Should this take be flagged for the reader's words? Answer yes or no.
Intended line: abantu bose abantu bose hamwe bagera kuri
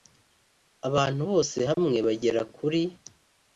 yes